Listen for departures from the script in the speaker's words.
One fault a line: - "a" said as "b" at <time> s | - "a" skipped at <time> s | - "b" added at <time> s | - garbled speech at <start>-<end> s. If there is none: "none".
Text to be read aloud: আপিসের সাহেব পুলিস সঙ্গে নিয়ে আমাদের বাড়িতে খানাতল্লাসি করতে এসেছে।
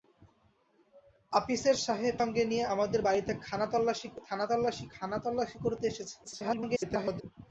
- "পুলিস" skipped at 2.1 s
- garbled speech at 6.2-7.2 s